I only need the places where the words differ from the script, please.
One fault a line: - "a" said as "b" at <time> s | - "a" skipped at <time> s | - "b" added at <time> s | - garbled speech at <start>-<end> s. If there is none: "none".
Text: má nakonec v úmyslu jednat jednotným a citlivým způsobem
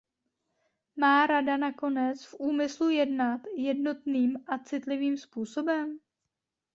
- "rada" added at 1.3 s